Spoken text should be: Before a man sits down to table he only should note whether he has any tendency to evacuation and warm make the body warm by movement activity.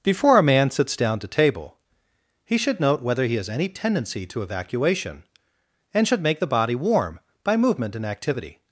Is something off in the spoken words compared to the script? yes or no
yes